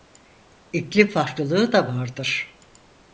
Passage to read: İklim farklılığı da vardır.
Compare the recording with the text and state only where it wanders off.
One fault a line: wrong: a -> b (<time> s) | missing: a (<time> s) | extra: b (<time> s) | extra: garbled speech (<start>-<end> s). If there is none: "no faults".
no faults